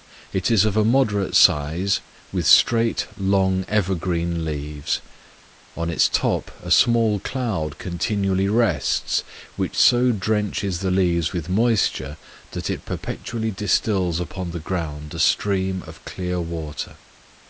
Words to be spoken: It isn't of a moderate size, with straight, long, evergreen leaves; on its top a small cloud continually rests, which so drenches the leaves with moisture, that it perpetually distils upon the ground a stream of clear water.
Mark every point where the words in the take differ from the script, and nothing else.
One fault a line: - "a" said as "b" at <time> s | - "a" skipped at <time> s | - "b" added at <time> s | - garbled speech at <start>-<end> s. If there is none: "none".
- "isn't" said as "is" at 0.5 s